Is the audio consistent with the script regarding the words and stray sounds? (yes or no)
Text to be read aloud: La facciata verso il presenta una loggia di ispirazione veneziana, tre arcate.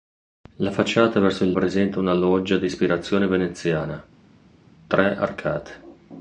yes